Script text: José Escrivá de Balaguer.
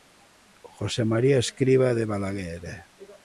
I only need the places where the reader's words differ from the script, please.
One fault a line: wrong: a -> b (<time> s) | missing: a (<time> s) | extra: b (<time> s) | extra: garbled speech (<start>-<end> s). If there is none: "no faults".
extra: María (1.1 s)